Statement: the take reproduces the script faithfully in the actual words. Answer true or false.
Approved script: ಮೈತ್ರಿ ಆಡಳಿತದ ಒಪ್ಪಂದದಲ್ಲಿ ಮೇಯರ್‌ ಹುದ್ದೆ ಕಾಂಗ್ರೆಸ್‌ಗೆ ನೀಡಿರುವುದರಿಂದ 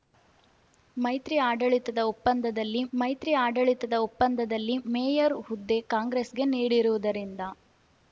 false